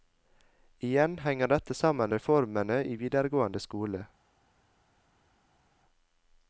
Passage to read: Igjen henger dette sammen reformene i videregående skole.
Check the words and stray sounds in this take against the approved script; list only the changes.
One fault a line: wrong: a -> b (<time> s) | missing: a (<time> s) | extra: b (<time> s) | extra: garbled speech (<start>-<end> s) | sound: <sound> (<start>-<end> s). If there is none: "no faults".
no faults